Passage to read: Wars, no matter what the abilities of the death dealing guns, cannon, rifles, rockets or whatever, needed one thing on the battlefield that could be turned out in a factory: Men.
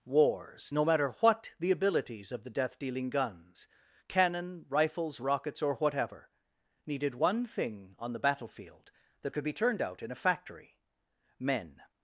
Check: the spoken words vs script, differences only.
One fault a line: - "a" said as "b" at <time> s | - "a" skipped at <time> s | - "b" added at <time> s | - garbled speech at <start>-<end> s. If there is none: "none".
none